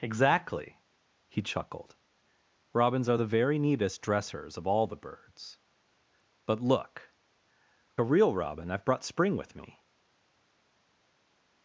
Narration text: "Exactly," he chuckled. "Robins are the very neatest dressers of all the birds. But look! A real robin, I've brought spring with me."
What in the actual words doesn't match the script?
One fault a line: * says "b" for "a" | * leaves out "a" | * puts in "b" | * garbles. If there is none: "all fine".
all fine